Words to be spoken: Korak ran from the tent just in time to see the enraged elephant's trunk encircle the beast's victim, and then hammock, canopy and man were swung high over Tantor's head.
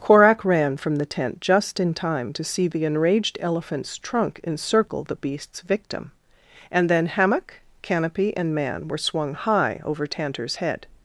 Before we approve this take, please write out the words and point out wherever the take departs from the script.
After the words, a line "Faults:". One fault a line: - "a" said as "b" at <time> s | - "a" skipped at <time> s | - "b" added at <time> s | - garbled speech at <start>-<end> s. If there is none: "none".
Korak ran from the tent just in time to see the enraged elephant's trunk encircle the beast's victim, and then hammock, canopy and man were swung high over Tantor's head.
Faults:
none